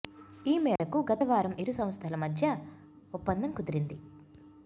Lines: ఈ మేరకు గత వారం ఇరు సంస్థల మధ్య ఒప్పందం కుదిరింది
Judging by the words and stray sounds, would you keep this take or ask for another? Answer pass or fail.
fail